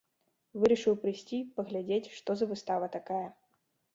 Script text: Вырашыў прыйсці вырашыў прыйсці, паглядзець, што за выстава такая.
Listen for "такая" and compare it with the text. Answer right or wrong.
right